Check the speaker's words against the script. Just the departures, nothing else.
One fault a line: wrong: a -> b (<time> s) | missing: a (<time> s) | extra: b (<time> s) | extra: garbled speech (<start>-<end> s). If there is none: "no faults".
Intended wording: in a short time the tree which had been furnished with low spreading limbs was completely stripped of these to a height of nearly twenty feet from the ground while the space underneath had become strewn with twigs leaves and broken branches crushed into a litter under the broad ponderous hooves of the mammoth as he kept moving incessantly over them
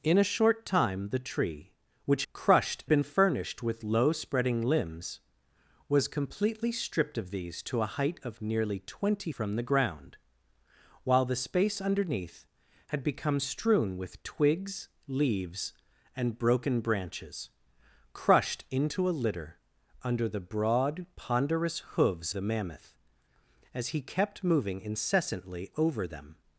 wrong: had -> crushed (2.3 s)
missing: feet (9.3 s)
missing: of (22.3 s)